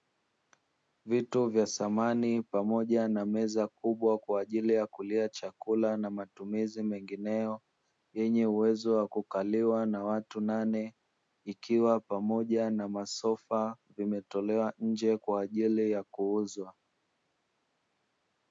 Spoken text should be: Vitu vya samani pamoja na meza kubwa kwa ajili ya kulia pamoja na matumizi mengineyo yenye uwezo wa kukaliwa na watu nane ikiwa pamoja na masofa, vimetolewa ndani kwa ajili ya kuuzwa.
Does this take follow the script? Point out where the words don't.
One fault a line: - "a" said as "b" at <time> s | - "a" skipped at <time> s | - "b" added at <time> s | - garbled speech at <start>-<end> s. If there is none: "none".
- "pamoja" said as "chakula" at 5.3 s
- "ndani" said as "nje" at 14.8 s